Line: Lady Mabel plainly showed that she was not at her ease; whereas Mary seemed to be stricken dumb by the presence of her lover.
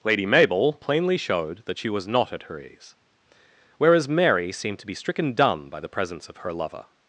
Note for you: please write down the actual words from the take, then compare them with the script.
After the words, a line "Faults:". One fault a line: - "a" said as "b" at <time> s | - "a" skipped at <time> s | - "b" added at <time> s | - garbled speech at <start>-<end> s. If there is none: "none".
Lady Mabel plainly showed that she was not at her ease; whereas Mary seemed to be stricken dumb by the presence of her lover.
Faults:
none